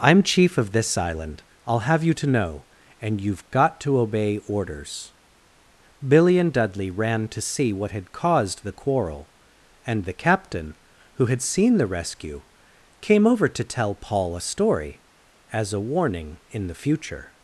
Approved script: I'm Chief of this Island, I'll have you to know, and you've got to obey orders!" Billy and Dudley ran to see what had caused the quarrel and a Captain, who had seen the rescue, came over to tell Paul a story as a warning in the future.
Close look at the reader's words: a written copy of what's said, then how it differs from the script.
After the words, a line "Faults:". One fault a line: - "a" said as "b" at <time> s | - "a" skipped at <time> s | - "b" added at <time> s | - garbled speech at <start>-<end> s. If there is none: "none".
I'm Chief of this Island, I'll have you to know, and you've got to obey orders!" Billy and Dudley ran to see what had caused the quarrel and the Captain, who had seen the rescue, came over to tell Paul a story as a warning in the future.
Faults:
- "a" said as "the" at 10.1 s